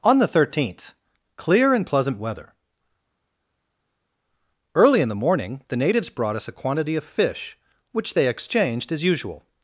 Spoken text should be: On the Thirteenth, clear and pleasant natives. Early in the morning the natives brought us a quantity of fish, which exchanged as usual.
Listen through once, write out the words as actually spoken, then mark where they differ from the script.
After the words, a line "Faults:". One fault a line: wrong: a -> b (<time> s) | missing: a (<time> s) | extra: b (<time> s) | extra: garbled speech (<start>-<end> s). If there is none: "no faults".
On the Thirteenth, clear and pleasant weather. Early in the morning the natives brought us a quantity of fish, which they exchanged as usual.
Faults:
wrong: natives -> weather (2.2 s)
extra: they (8.2 s)